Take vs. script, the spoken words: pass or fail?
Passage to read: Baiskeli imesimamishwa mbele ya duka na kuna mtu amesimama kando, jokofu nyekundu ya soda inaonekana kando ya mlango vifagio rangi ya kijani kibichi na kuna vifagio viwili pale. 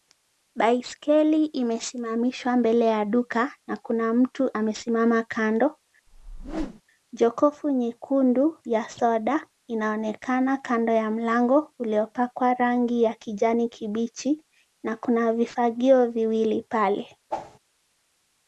fail